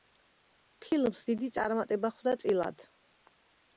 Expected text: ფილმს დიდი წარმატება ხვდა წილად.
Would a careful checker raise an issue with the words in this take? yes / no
no